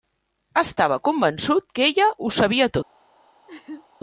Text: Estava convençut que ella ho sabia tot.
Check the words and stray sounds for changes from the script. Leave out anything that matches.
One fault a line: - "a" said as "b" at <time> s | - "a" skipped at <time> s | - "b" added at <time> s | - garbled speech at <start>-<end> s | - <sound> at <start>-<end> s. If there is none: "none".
- laugh at 3.5-3.9 s